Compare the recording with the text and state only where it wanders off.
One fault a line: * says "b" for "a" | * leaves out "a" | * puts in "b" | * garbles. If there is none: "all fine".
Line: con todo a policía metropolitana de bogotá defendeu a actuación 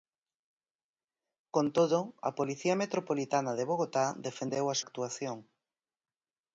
all fine